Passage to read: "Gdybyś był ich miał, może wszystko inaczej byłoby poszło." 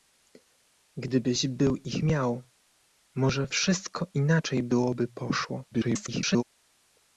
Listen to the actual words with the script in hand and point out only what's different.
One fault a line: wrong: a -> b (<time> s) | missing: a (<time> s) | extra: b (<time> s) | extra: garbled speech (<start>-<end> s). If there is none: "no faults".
extra: garbled speech (5.7-6.4 s)